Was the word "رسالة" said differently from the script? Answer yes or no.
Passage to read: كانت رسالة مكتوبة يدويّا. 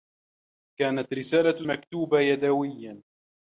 no